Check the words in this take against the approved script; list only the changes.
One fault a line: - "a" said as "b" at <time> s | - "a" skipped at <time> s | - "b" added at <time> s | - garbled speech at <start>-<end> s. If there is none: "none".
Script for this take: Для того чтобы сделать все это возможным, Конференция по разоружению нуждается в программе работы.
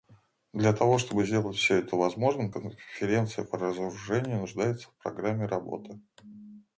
none